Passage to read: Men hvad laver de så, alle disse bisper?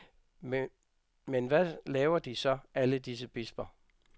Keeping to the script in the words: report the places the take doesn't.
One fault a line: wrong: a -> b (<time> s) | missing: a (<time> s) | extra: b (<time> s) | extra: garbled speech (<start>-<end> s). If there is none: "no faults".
no faults